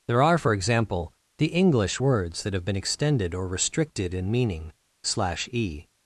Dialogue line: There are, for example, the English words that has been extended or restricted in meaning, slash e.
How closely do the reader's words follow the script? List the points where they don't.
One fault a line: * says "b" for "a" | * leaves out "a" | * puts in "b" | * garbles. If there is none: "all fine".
* says "have" for "has"